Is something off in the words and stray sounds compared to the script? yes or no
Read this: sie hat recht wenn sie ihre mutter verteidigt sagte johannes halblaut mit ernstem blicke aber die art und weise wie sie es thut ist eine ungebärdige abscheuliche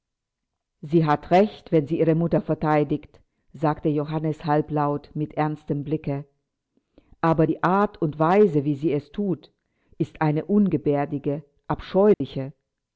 yes